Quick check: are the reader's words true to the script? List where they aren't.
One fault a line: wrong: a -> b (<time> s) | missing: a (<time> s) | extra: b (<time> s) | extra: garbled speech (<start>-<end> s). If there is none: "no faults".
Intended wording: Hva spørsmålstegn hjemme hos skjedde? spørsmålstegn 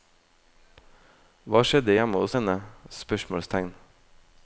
wrong: spørsmålstegn -> skjedde (1.6 s)
wrong: skjedde -> henne (2.4 s)